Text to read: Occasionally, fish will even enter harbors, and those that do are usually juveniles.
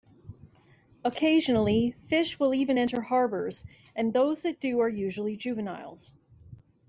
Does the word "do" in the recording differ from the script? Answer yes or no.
no